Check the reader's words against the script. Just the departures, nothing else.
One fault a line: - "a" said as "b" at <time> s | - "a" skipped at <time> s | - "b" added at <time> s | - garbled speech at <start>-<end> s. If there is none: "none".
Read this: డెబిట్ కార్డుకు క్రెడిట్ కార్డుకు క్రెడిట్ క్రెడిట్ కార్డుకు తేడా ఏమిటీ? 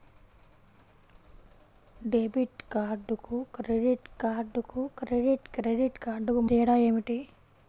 none